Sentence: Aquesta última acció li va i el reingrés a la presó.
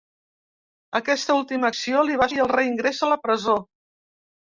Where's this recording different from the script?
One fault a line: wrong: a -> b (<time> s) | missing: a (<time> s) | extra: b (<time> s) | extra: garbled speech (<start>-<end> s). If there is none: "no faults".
no faults